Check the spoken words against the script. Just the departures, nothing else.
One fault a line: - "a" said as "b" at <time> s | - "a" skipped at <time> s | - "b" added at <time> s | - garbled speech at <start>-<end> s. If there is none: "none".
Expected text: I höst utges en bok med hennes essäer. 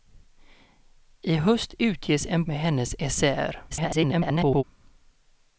- "bok" skipped at 2.4 s
- garbled speech at 3.7-4.6 s